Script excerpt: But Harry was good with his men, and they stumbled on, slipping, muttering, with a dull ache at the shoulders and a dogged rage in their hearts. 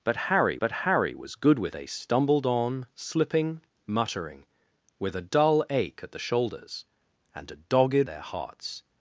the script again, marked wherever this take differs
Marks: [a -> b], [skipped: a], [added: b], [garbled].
But Harry [added: but Harry] was good with [skipped: his men, and] they stumbled on, slipping, muttering, with a dull ache at the shoulders and a dogged [skipped: rage in] their hearts.